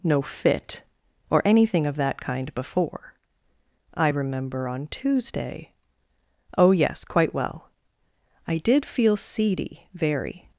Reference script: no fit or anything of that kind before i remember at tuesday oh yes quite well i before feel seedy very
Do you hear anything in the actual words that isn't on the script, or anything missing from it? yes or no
yes